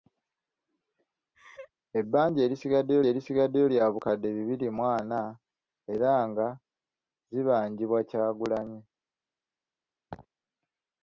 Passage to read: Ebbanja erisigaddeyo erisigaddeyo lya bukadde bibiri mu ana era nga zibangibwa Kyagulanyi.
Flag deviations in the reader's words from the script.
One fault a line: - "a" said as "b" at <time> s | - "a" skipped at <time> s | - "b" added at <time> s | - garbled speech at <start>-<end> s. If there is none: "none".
none